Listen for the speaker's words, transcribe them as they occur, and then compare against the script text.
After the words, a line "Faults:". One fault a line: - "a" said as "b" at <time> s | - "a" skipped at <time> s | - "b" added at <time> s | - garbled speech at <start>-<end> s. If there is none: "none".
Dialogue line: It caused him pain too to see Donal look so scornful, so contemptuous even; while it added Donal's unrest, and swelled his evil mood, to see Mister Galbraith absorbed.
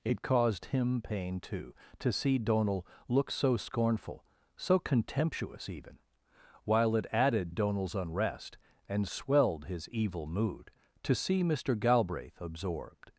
It caused him pain too to see Donal look so scornful, so contemptuous even; while it added Donal's unrest, and swelled his evil mood, to see Mister Galbraith absorbed.
Faults:
none